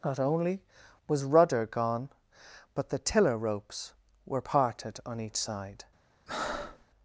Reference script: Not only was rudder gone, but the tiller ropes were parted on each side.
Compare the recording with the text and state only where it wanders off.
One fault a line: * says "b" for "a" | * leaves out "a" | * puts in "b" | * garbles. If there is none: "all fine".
all fine